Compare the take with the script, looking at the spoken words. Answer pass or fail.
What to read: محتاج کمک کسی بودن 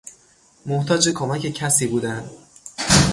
pass